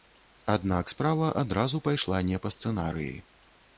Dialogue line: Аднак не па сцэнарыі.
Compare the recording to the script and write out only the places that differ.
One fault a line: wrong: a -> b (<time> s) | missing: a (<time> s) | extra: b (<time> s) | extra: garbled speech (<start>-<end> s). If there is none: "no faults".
extra: справа адразу пайшла (0.9 s)